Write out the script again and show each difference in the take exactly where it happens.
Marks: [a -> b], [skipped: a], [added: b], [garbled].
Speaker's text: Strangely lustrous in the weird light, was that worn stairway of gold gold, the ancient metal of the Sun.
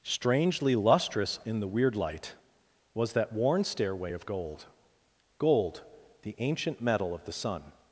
Strangely lustrous in the weird light, was that worn stairway of gold gold, the ancient metal of the Sun.